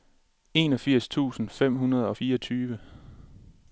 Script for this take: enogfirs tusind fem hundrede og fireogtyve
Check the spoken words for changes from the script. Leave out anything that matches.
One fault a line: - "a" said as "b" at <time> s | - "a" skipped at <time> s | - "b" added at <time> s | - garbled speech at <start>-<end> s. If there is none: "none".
none